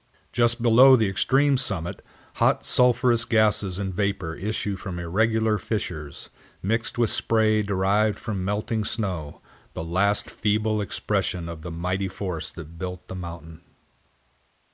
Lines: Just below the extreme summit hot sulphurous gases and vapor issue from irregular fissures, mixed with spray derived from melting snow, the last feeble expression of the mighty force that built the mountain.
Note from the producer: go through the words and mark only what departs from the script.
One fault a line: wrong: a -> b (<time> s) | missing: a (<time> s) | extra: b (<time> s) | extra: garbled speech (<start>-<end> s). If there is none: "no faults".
no faults